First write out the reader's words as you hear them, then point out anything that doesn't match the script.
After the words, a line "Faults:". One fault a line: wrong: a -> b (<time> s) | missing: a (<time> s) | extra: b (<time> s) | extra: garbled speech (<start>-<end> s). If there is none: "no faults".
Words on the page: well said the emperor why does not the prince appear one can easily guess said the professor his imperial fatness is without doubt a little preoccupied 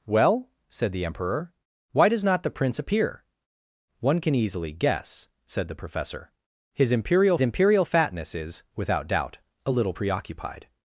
well said the emperor why does not the prince appear one can easily guess said the professor his imperial imperial fatness is without doubt a little preoccupied
Faults:
extra: imperial (7.4 s)